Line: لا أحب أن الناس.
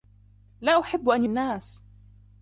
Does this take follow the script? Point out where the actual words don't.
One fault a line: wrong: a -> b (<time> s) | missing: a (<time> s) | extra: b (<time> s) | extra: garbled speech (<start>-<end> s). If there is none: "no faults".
no faults